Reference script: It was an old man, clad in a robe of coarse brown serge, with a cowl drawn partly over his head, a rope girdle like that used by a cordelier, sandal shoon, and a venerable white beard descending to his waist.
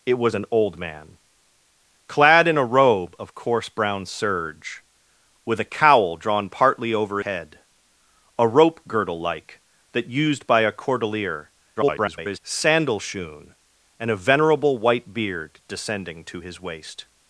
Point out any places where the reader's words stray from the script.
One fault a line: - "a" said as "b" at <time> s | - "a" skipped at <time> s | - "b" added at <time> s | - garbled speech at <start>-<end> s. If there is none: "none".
- "his" skipped at 7.2 s
- garbled speech at 11.8-12.4 s